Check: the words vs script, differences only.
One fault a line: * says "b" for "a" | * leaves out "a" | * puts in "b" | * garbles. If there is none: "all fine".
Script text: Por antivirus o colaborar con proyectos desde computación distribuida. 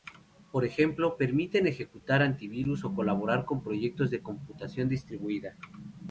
* puts in "ejemplo permiten ejecutar"
* says "de" for "desde"